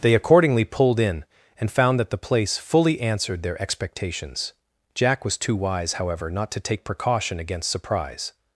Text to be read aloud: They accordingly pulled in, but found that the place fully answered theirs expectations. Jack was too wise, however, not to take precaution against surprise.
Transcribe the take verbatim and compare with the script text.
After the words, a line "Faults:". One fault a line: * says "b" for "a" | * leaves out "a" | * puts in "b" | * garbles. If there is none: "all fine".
They accordingly pulled in, and found that the place fully answered their expectations. Jack was too wise, however, not to take precaution against surprise.
Faults:
* says "and" for "but"
* says "their" for "theirs"